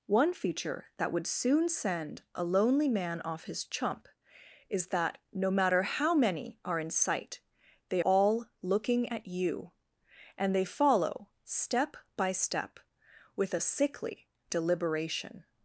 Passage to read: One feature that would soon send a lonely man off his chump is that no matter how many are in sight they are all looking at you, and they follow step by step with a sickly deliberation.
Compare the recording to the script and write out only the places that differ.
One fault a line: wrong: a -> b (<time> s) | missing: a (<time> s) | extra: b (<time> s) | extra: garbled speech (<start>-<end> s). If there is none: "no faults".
missing: are (8.0 s)